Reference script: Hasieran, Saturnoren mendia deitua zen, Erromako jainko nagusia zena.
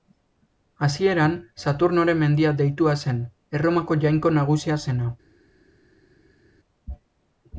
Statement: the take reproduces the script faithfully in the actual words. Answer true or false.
true